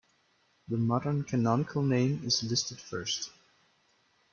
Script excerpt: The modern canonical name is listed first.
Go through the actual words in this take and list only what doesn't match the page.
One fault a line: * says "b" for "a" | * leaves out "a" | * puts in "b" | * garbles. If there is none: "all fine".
all fine